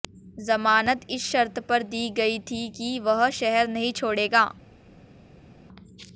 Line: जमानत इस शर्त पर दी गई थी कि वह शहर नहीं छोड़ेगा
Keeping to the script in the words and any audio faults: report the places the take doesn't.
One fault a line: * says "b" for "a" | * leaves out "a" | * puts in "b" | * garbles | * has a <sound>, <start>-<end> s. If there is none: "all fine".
all fine